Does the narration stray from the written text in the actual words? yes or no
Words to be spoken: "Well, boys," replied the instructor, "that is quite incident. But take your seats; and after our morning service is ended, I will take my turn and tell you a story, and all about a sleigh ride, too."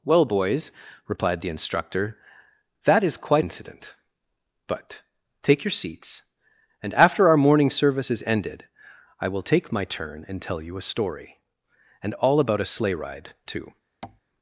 no